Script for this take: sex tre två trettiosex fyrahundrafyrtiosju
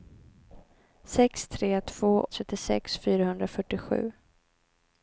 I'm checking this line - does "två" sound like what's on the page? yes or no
yes